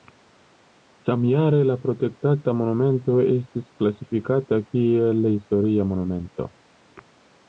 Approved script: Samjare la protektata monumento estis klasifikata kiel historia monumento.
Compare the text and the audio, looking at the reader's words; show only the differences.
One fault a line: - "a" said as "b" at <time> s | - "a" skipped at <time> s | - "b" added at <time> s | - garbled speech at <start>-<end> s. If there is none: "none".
none